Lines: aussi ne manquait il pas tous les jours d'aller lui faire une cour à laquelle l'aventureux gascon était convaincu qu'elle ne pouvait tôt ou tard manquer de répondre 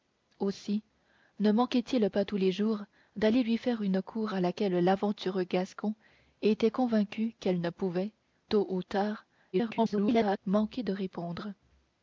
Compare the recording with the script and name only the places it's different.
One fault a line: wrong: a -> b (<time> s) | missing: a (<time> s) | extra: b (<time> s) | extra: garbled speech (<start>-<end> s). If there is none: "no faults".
extra: garbled speech (9.5-10.4 s)